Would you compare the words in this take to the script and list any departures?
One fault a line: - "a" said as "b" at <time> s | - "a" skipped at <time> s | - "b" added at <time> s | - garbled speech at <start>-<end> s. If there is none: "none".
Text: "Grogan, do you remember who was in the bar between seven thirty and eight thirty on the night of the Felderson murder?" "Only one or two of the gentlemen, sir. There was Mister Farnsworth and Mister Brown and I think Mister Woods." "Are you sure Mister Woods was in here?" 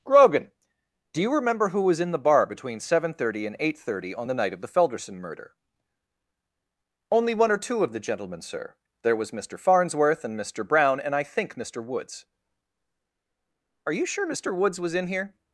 none